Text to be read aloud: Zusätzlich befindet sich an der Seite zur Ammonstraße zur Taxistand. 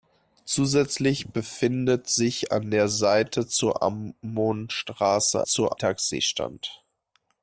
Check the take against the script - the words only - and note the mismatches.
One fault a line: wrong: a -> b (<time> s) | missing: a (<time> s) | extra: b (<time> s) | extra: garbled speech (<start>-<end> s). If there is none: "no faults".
no faults